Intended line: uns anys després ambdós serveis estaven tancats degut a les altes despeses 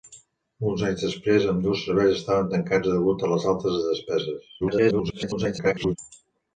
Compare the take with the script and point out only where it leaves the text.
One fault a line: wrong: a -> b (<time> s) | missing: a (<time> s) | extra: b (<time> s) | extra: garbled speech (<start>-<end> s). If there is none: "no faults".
extra: garbled speech (4.6-6.0 s)